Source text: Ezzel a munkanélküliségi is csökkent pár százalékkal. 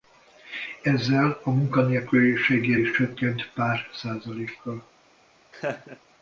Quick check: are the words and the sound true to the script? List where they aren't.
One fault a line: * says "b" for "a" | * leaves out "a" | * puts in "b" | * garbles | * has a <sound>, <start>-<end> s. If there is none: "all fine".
* has a laugh, 5.5-6.0 s